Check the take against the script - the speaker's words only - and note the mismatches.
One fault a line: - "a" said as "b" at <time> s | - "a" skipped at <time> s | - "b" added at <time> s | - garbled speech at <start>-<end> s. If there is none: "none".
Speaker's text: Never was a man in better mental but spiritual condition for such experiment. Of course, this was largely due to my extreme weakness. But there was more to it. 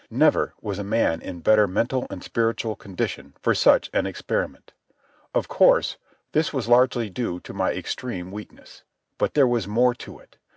- "but" said as "and" at 2.1 s
- "an" added at 3.9 s